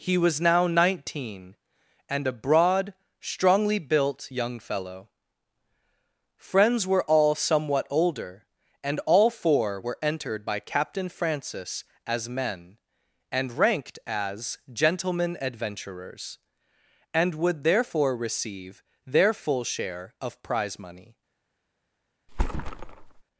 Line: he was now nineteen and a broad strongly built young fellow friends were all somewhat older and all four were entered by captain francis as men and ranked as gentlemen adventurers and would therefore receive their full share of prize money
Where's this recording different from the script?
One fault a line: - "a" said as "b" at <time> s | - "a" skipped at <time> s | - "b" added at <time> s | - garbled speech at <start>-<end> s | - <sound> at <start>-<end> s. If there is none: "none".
- thud at 22.3-23.2 s